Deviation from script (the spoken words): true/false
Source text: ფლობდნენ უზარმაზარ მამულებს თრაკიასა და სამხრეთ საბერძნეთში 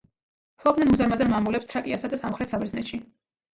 false